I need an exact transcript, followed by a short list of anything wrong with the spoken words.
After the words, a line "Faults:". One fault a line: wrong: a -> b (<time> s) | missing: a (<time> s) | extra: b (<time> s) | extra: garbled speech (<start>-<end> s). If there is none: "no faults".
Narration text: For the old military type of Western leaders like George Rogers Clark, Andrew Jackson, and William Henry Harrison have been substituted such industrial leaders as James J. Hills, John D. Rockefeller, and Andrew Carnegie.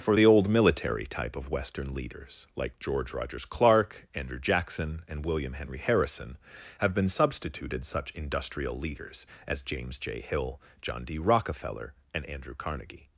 For the old military type of Western leaders like George Rogers Clark, Andrew Jackson, and William Henry Harrison have been substituted such industrial leaders as James J. Hill, John D. Rockefeller, and Andrew Carnegie.
Faults:
wrong: Hills -> Hill (10.2 s)